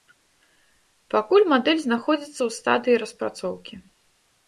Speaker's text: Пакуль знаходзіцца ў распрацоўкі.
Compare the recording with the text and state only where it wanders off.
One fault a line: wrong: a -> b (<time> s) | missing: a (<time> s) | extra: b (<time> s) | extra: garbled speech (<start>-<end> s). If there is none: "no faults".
extra: мадэль (1.5 s)
extra: стадыі (2.6 s)